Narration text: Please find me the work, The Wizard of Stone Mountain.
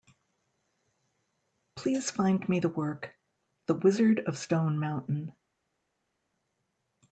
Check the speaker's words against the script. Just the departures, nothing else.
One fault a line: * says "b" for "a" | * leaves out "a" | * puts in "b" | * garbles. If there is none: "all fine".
all fine